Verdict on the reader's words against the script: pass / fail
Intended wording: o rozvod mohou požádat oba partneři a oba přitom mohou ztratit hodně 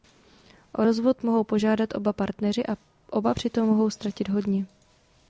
pass